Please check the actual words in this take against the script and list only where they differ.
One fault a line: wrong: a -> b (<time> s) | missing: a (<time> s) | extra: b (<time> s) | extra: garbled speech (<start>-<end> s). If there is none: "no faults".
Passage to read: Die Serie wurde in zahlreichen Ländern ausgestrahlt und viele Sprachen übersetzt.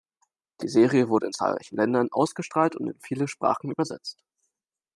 extra: in (2.9 s)